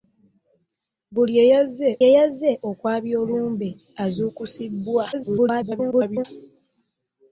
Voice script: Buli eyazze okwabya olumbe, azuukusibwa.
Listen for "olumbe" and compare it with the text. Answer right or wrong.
right